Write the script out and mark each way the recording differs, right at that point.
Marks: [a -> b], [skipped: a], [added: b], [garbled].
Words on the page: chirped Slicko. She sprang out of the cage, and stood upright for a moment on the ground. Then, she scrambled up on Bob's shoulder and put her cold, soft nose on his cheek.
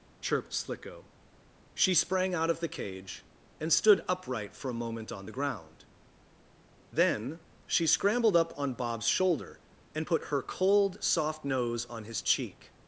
chirped Slicko. She sprang out of the cage, and stood upright for a moment on the ground. Then, she scrambled up on Bob's shoulder and put her cold, soft nose on his cheek.